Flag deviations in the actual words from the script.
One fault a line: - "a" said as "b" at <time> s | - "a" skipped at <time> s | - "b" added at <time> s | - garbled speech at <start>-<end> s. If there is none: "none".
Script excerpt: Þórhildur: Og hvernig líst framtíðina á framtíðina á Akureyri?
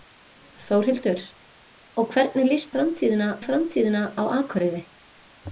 none